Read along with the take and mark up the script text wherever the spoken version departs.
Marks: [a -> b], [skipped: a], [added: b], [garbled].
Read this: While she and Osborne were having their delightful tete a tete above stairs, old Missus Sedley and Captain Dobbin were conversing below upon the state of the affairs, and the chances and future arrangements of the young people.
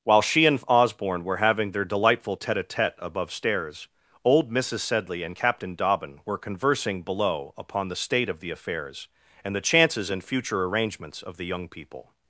While she and Osborne were having their delightful tete a tete above stairs, old Missus Sedley and Captain Dobbin were conversing below upon the state of the affairs, and the chances and future arrangements of the young people.